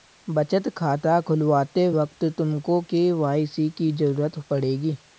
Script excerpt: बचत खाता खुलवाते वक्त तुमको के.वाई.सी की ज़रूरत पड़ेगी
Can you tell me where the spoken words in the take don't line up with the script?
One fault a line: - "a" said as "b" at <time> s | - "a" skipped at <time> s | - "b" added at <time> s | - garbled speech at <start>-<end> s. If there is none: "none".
none